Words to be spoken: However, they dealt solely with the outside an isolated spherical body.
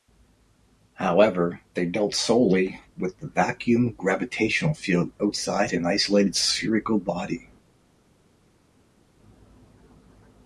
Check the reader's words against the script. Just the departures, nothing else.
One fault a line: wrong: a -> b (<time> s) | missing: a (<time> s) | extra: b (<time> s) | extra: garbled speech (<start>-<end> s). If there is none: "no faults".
extra: vacuum gravitational field (3.3 s)